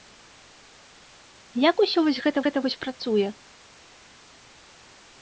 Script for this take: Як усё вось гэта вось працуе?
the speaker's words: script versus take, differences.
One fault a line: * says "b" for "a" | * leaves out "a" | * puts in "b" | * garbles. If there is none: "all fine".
* puts in "гэта"